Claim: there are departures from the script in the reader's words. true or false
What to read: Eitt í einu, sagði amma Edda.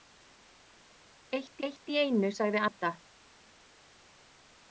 true